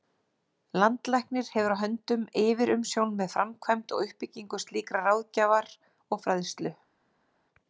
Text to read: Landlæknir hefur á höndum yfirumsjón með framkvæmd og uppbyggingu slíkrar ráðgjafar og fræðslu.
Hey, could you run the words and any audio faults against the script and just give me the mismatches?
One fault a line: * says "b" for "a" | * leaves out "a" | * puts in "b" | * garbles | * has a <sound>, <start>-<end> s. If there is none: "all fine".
all fine